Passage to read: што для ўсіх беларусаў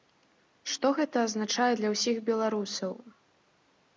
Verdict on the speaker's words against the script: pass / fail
fail